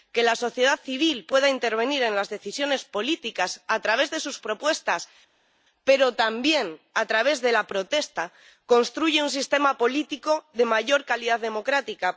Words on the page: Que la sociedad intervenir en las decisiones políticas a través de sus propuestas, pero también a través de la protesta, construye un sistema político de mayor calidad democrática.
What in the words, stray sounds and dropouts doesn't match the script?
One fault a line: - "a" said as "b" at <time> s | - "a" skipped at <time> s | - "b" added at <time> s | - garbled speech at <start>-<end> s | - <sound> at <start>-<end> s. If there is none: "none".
- "civil pueda" added at 0.9 s